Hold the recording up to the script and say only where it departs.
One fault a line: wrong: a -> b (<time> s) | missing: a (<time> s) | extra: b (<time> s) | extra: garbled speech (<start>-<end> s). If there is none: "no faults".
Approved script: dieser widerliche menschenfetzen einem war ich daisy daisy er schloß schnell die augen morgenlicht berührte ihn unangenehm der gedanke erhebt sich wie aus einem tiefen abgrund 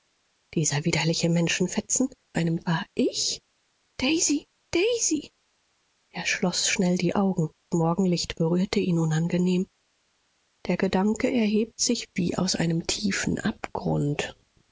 no faults